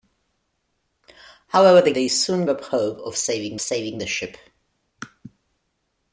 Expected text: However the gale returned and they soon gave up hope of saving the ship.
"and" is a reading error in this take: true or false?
true